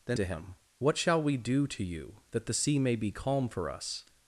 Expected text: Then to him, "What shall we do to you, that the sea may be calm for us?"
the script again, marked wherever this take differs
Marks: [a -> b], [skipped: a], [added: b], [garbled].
Then to him, "What shall we do to you, that the sea may be calm for us?"